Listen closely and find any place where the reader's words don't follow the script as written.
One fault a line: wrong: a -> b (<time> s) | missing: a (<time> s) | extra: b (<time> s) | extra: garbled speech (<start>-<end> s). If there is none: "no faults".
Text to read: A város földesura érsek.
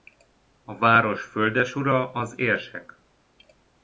extra: az (2.1 s)